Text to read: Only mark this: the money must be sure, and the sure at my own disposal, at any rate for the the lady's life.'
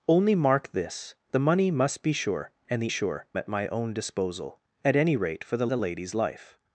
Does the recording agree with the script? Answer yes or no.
yes